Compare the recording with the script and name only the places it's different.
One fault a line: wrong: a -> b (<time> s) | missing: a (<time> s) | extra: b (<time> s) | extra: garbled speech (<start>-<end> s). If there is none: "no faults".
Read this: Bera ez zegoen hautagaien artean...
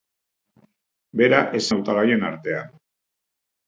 missing: zegoen (1.6 s)